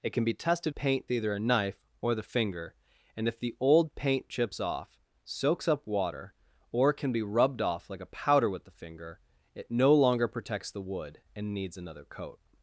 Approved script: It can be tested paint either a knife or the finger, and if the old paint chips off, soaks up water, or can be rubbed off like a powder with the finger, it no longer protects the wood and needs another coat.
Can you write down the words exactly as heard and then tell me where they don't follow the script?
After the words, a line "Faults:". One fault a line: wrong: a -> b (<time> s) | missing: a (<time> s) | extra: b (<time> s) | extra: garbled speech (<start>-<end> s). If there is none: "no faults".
It can be tested paint either a knife or the finger, and if the old paint chips off, soaks up water, or can be rubbed off like a powder with the finger, it no longer protects the wood and needs another coat.
Faults:
no faults